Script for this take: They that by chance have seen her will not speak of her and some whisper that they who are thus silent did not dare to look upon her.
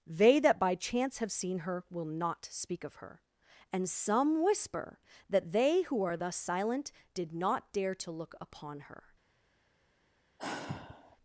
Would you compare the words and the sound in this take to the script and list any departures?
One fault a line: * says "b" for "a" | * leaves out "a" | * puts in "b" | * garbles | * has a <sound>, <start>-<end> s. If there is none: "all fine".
* has a sigh, 10.4-11.2 s